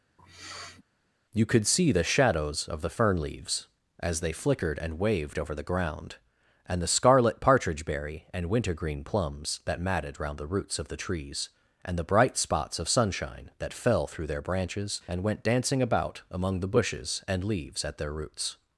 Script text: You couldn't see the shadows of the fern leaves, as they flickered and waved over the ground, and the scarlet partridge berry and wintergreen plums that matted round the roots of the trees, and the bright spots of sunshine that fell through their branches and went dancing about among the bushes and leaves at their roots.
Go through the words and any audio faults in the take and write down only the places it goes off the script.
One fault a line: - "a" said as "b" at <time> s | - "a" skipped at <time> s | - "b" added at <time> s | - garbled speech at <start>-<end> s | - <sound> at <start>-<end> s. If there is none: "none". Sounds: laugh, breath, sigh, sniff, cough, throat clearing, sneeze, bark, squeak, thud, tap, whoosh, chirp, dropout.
- sniff at 0.2-0.8 s
- "couldn't" said as "could" at 1.4 s